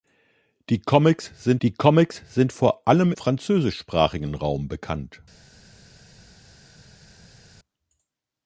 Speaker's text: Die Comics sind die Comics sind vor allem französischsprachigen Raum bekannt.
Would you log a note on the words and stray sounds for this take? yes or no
no